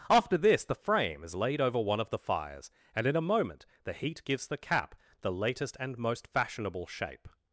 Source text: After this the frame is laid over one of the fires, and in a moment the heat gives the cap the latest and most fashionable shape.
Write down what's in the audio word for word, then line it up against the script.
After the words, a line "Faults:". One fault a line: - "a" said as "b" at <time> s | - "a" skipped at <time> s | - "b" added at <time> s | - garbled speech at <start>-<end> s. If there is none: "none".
After this the frame is laid over one of the fires, and in a moment the heat gives the cap the latest and most fashionable shape.
Faults:
none